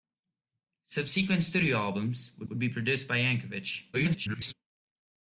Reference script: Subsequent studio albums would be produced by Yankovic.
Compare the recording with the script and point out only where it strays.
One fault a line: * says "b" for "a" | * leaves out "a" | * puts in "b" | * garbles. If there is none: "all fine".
* puts in "would"
* garbles